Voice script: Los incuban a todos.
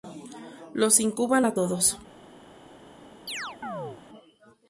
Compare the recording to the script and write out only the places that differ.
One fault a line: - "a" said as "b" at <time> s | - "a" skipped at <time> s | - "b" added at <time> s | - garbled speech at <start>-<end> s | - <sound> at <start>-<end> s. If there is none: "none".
- chirp at 3.3-4.0 s